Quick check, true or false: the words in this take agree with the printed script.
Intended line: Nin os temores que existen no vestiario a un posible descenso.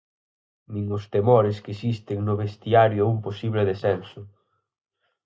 true